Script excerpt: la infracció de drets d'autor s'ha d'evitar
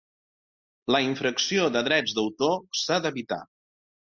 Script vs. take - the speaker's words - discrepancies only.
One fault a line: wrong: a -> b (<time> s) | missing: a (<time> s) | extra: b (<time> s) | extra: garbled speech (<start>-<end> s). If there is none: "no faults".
no faults